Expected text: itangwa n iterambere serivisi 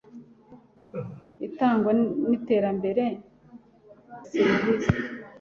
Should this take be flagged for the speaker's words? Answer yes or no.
no